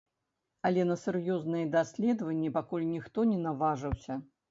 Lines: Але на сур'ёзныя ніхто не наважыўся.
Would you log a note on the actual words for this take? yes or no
yes